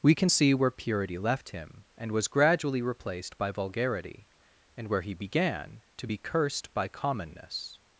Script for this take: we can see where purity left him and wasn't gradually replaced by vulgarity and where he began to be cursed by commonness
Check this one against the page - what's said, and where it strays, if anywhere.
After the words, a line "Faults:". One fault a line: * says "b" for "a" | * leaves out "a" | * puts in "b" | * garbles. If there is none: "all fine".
we can see where purity left him and was gradually replaced by vulgarity and where he began to be cursed by commonness
Faults:
* says "was" for "wasn't"